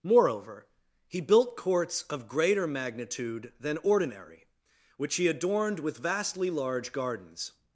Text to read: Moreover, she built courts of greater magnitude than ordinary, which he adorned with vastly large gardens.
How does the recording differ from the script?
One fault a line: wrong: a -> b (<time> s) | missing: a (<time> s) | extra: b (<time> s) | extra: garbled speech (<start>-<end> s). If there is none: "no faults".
wrong: she -> he (1.1 s)